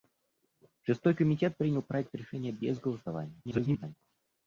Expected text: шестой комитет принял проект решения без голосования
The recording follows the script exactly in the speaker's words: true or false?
false